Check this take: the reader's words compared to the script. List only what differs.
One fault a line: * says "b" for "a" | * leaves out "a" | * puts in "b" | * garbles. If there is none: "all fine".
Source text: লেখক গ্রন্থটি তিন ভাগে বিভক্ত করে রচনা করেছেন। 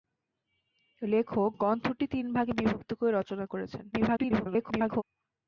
* garbles